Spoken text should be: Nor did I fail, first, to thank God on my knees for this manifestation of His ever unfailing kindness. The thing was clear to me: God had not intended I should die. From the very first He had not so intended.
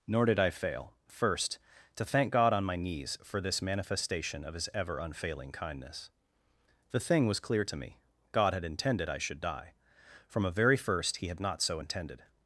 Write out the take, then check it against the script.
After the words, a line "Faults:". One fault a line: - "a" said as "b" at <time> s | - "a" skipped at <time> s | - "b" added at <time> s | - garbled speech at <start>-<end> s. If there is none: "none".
Nor did I fail, first, to thank God on my knees for this manifestation of His ever unfailing kindness. The thing was clear to me: God had intended I should die. From a very first He had not so intended.
Faults:
- "not" skipped at 8.6 s
- "the" said as "a" at 10.4 s